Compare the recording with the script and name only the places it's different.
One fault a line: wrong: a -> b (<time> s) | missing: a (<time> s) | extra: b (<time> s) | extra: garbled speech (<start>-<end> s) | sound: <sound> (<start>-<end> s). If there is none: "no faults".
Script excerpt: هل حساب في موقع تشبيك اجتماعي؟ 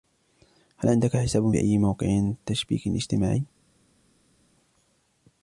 extra: عندك (0.9 s)
extra: أي (1.6 s)